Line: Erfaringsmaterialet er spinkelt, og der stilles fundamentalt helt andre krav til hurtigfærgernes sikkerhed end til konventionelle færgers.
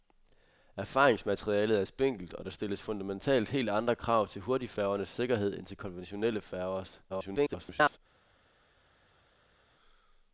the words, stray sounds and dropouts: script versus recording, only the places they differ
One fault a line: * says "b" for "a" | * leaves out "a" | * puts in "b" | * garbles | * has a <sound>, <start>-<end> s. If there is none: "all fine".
* garbles